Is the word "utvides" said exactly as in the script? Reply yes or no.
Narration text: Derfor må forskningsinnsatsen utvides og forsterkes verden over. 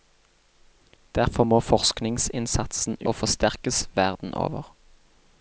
no